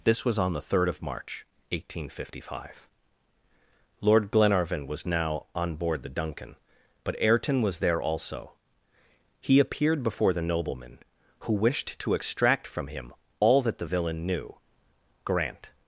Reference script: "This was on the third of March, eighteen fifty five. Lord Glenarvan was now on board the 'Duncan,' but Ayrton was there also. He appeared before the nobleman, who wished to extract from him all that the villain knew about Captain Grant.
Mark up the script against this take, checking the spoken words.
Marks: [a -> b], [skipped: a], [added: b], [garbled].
"This was on the third of March, eighteen fifty five. Lord Glenarvan was now on board the 'Duncan,' but Ayrton was there also. He appeared before the nobleman, who wished to extract from him all that the villain knew [skipped: about Captain] Grant.